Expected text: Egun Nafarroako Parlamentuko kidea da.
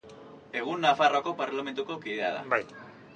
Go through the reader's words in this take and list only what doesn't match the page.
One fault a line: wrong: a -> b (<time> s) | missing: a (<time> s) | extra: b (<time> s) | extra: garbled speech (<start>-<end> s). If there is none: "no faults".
no faults